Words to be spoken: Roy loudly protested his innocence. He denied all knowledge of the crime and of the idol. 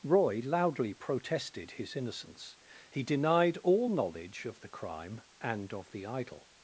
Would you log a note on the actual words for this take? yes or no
no